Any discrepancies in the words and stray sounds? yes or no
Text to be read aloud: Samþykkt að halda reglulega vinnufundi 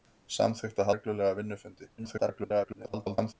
yes